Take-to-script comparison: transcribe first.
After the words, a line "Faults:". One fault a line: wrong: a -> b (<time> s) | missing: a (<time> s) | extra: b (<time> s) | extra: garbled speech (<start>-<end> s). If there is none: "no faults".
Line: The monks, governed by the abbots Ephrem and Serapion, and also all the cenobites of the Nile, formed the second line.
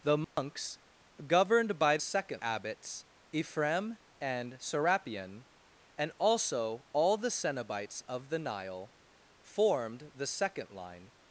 The monks, governed by second abbots Ephrem and Serapion, and also all the cenobites of the Nile, formed the second line.
Faults:
wrong: the -> second (2.0 s)